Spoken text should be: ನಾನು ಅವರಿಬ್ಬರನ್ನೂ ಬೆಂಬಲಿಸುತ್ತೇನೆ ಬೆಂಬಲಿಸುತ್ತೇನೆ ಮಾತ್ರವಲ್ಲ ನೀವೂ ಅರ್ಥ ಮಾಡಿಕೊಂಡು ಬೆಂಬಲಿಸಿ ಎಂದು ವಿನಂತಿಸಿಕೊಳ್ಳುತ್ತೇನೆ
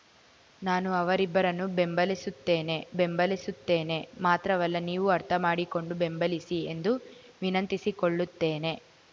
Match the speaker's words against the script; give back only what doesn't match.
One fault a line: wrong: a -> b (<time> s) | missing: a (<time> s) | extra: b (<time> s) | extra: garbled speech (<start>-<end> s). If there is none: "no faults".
no faults